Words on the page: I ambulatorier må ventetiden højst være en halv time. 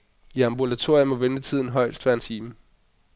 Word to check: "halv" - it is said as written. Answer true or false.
false